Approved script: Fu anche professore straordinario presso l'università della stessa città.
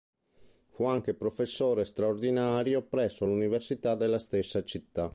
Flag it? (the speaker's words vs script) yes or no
no